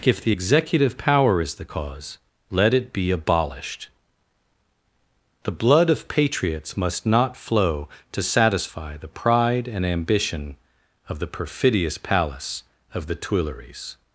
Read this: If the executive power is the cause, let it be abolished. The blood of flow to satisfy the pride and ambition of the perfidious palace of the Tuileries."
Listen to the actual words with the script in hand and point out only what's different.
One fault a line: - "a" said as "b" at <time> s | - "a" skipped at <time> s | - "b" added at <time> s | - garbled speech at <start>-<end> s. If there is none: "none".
- "patriots must not" added at 6.1 s